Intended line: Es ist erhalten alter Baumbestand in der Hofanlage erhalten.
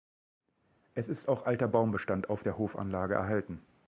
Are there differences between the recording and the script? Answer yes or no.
yes